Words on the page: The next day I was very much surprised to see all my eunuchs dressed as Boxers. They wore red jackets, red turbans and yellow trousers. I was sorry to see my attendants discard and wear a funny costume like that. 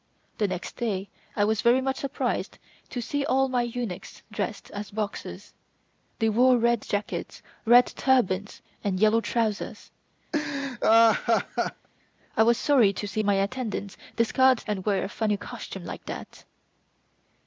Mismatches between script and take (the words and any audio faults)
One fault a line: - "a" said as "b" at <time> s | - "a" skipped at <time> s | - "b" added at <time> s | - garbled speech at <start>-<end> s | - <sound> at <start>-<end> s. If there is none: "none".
- laugh at 10.3-11.9 s